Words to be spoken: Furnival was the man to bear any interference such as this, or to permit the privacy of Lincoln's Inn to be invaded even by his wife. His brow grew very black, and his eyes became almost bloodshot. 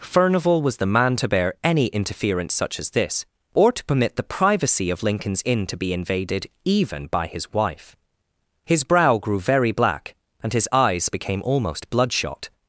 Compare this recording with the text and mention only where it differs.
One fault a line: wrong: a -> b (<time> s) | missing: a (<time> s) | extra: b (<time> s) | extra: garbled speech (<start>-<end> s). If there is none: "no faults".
no faults